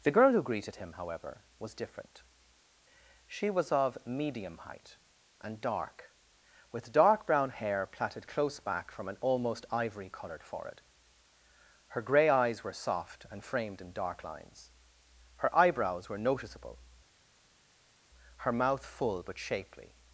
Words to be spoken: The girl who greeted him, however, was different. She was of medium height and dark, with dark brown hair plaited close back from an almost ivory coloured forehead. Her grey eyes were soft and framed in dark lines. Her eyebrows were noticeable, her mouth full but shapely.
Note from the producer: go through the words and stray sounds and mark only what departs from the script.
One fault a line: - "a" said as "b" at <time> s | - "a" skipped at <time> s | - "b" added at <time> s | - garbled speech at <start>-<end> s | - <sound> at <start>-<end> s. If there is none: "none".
none